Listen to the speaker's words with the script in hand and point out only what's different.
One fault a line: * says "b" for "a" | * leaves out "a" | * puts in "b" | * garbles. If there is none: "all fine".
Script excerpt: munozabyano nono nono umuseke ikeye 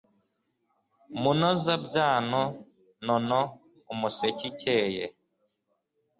* leaves out "nono"